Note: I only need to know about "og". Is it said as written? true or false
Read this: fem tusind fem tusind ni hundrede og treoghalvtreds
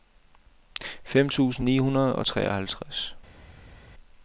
true